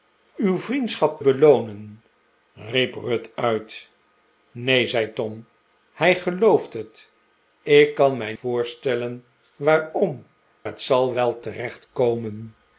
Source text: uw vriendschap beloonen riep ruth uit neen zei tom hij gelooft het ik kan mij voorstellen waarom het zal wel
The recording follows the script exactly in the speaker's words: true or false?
true